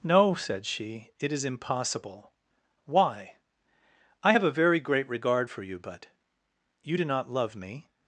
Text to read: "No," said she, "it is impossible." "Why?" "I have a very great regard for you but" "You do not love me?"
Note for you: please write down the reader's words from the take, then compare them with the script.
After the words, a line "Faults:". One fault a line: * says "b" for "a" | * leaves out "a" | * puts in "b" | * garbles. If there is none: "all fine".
"No," said she, "it is impossible." "Why?" "I have a very great regard for you but" "You do not love me?"
Faults:
all fine